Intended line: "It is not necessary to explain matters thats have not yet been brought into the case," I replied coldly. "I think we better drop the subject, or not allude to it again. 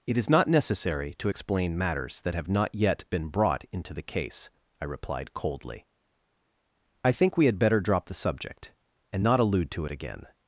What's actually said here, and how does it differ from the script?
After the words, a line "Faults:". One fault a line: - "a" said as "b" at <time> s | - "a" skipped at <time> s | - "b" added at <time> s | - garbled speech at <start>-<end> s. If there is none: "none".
"It is not necessary to explain matters that have not yet been brought into the case," I replied coldly. "I think we had better drop the subject, and not allude to it again.
Faults:
- "thats" said as "that" at 2.2 s
- "had" added at 7.4 s
- "or" said as "and" at 9.1 s